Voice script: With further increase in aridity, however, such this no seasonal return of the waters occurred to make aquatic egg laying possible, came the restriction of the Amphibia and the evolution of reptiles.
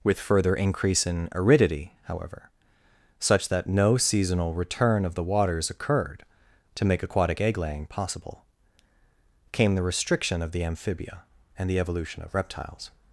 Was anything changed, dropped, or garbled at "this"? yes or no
yes